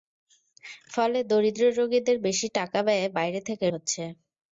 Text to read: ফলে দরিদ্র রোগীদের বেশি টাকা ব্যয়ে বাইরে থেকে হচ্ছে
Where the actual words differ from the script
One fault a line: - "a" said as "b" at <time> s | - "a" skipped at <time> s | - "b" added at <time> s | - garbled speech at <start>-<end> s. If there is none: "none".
none